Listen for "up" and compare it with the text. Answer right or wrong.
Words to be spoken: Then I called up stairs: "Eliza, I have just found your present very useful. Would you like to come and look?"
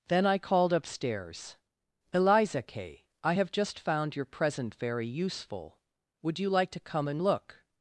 wrong